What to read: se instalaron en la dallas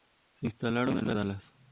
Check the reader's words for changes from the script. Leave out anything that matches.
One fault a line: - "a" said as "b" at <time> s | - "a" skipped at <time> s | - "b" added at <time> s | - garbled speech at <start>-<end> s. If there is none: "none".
none